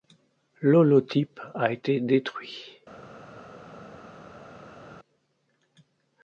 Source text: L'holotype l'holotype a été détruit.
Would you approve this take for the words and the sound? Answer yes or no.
no